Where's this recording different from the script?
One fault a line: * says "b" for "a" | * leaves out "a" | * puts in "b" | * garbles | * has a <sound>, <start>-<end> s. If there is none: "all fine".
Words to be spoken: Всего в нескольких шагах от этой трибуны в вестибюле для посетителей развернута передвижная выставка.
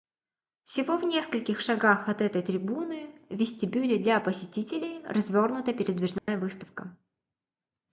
* has a dropout, 6.2-6.3 s